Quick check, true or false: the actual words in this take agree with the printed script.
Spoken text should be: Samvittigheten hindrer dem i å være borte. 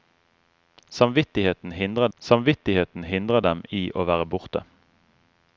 false